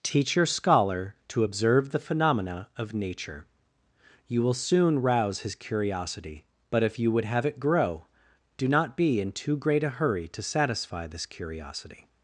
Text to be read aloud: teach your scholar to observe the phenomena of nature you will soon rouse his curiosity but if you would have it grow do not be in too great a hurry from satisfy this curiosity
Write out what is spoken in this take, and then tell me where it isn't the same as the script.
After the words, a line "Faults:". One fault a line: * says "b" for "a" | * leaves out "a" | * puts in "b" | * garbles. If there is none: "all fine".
teach your scholar to observe the phenomena of nature you will soon rouse his curiosity but if you would have it grow do not be in too great a hurry to satisfy this curiosity
Faults:
* says "to" for "from"